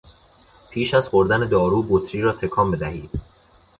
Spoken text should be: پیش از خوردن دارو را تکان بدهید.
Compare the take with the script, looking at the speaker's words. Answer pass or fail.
fail